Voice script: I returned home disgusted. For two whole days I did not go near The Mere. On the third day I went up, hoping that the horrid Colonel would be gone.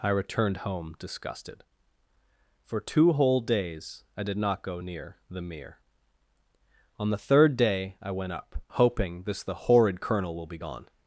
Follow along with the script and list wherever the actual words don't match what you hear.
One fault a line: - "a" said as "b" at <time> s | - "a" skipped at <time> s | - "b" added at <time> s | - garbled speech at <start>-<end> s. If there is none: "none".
- "that" said as "this" at 9.2 s
- "would" said as "will" at 10.4 s